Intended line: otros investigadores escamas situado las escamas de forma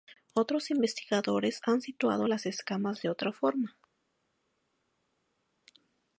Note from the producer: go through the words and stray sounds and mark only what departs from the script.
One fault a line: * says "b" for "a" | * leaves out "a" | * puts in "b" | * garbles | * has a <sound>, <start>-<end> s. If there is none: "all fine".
* says "han" for "escamas"
* puts in "otra"